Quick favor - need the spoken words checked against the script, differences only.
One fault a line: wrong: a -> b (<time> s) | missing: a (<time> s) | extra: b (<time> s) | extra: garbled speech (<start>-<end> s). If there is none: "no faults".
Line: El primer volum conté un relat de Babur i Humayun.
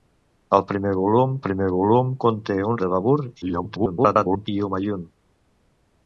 extra: primer volum (1.4 s)
missing: relat (2.8 s)
extra: garbled speech (3.4-4.5 s)